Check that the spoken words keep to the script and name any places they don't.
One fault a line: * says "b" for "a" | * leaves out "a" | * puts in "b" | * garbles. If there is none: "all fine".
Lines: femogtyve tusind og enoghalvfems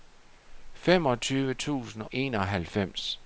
* leaves out "og"